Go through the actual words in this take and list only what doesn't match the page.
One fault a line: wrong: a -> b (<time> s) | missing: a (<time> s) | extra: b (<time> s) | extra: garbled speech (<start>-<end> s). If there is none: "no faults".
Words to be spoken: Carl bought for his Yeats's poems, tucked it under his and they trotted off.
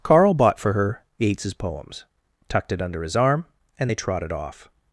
wrong: his -> her (0.7 s)
extra: arm (3.1 s)